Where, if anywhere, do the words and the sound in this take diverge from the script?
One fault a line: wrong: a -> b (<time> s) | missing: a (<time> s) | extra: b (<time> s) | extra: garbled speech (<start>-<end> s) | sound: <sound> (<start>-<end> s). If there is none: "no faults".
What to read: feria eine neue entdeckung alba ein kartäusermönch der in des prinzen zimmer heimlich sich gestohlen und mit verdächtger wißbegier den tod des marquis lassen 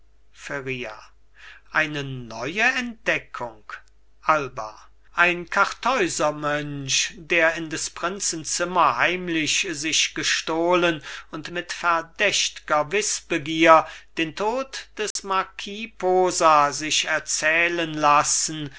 sound: dropout (15.1-15.2 s)
extra: posa sich erzählen (16.0 s)